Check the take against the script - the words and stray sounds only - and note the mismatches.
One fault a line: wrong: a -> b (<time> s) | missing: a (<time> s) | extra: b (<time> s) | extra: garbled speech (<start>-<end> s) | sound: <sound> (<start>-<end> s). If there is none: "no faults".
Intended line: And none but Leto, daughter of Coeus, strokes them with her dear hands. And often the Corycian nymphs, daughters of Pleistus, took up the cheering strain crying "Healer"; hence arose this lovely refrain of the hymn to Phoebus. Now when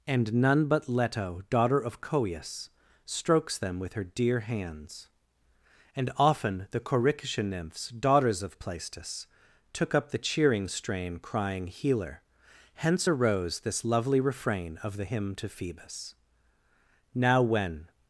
no faults